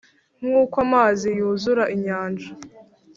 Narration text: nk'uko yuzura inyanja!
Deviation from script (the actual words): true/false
true